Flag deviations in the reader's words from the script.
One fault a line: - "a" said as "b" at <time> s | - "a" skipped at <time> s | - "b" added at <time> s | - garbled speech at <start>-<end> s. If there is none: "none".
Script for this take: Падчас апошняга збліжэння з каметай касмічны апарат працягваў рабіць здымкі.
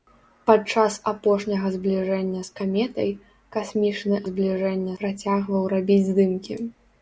- "апарат" said as "збліжэння" at 4.3 s